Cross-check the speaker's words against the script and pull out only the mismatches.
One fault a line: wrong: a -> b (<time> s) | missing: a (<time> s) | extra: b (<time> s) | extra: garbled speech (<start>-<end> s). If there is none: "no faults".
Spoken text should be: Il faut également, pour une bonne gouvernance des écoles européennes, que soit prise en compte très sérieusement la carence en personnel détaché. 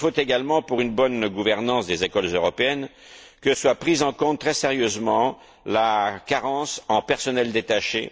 no faults